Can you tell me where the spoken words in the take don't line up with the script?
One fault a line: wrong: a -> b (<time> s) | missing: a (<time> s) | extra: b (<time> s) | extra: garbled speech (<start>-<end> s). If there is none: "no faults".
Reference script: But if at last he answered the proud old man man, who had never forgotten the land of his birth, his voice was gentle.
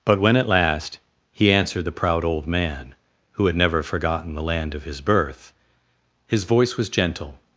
wrong: if -> when (0.2 s)
missing: man (2.9 s)